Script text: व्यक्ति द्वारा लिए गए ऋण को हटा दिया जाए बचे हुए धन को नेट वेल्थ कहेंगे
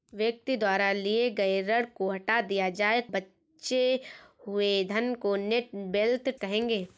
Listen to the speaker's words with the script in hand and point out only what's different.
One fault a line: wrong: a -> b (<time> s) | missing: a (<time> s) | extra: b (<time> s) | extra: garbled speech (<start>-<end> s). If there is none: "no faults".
no faults